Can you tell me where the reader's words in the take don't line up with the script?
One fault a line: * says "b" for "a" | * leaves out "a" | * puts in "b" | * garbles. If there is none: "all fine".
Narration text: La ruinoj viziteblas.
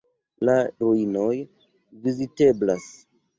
all fine